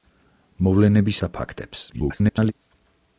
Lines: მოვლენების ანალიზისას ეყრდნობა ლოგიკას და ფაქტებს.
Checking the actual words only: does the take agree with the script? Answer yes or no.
no